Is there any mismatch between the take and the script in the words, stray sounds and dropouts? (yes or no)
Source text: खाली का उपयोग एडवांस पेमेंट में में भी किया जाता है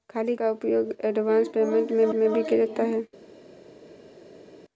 no